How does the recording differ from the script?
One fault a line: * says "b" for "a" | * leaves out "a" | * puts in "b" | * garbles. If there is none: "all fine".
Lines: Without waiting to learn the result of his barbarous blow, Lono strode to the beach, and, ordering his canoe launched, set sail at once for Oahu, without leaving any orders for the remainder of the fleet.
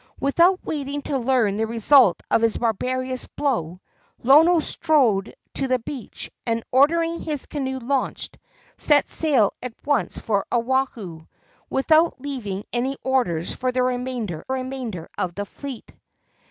* puts in "remainder"